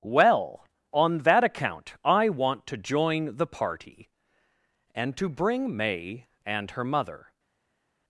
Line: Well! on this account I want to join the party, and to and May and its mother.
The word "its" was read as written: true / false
false